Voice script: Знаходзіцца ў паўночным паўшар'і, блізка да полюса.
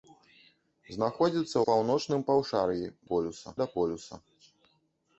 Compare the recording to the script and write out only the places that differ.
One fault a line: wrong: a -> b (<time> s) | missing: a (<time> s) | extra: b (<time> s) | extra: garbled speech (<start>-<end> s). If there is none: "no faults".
missing: ў (1.6 s)
wrong: блізка -> полюса (3.1 s)